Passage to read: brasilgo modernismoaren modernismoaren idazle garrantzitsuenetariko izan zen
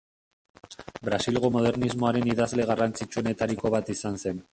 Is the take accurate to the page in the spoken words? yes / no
no